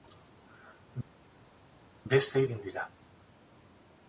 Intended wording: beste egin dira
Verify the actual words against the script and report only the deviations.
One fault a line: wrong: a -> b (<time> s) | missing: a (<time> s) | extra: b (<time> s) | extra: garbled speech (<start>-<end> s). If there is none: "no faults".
no faults